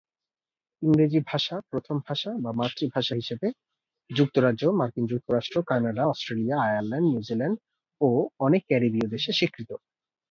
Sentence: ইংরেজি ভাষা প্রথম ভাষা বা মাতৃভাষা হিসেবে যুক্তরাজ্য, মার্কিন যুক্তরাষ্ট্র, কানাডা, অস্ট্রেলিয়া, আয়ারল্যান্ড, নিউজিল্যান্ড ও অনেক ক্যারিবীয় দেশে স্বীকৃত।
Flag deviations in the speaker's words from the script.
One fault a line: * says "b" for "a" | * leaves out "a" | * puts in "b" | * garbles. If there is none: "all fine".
all fine